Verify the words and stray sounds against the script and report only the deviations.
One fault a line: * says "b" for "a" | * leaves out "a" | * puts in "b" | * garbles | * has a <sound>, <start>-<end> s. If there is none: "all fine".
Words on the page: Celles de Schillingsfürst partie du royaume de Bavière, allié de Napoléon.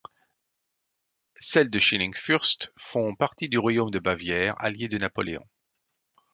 * puts in "font"